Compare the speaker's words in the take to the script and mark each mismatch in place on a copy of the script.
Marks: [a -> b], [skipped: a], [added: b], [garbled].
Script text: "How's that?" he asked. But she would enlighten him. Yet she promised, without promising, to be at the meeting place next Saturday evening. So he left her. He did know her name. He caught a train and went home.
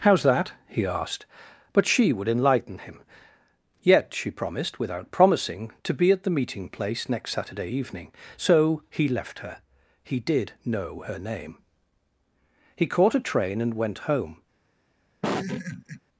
"How's that?" he asked. But she would enlighten him. Yet she promised, without promising, to be at the meeting place next Saturday evening. So he left her. He did know her name. He caught a train and went home.